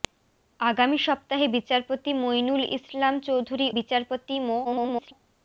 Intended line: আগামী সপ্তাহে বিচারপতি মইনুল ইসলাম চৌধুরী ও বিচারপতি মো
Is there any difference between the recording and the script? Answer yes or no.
yes